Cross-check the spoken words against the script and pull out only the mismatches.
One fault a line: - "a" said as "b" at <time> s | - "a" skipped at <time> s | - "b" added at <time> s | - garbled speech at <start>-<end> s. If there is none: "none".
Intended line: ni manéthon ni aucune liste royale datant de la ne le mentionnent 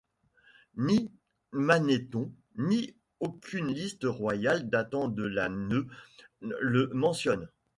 none